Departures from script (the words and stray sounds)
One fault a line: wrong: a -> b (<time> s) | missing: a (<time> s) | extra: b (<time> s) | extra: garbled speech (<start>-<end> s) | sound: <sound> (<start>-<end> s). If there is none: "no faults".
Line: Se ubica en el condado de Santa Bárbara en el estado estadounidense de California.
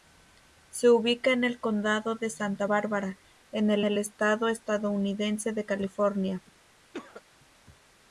extra: el (3.8 s)
sound: cough (6.9-7.2 s)